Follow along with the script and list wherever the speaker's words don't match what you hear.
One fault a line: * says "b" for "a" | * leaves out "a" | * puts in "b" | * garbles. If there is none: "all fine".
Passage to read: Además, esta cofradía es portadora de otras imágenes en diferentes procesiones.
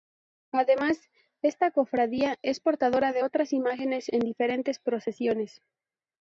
all fine